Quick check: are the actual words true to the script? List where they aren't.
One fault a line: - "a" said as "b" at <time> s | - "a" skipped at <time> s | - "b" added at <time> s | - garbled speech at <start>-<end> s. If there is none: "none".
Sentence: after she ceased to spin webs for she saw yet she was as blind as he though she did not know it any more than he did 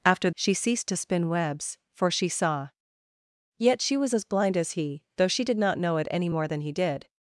none